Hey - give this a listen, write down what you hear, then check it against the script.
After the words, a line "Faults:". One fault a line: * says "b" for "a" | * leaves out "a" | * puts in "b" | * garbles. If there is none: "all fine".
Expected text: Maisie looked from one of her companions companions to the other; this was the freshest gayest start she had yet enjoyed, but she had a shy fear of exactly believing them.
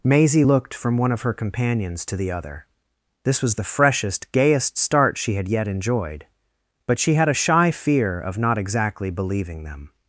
Maisie looked from one of her companions to the other; this was the freshest gayest start she had yet enjoyed, but she had a shy fear of not exactly believing them.
Faults:
* leaves out "companions"
* puts in "not"